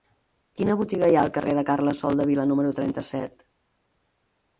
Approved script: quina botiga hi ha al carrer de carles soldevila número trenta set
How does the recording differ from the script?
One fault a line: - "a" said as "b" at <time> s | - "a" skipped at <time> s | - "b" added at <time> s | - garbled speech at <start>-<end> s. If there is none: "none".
none